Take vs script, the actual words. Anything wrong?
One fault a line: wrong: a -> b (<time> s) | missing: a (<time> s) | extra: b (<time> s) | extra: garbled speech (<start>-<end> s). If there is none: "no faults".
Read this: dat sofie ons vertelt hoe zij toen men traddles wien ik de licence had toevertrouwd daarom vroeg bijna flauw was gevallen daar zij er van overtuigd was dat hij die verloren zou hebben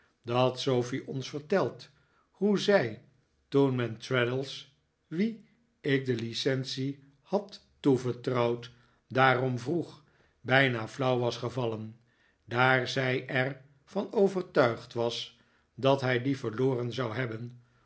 no faults